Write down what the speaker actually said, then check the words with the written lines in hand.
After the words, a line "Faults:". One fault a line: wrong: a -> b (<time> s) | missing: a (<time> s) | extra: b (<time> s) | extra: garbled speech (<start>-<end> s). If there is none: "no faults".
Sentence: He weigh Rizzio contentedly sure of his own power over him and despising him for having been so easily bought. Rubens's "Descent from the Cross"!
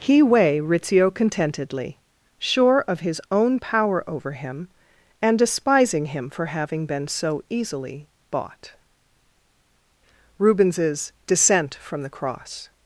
He weigh Rizzio contentedly sure of his own power over him and despising him for having been so easily bought. Rubens's "Descent from the Cross"!
Faults:
no faults